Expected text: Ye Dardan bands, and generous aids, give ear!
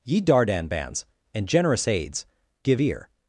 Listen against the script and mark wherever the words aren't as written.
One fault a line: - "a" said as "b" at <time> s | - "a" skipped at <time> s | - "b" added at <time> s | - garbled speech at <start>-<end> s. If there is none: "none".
none